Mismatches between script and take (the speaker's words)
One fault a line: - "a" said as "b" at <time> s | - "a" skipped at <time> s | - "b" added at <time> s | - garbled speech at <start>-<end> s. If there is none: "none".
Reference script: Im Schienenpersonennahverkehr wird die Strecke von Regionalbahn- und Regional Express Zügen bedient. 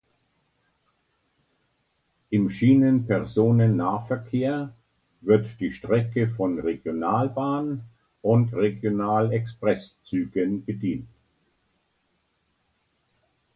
none